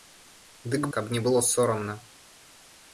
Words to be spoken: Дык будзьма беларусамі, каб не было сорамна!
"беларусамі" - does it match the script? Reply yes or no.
no